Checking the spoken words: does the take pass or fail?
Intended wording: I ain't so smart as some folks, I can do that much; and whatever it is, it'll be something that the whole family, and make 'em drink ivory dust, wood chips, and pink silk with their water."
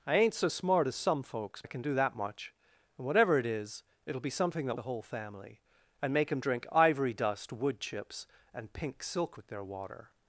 pass